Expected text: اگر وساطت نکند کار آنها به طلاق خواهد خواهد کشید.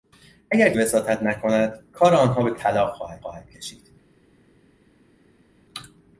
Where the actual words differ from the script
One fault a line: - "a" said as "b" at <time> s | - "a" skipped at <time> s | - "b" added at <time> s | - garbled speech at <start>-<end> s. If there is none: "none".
none